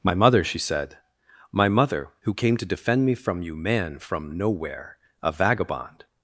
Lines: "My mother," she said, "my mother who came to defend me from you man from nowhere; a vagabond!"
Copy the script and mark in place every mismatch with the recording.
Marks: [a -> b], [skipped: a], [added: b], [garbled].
"My mother," she said, "my mother who came to defend me from you man from nowhere; a vagabond!"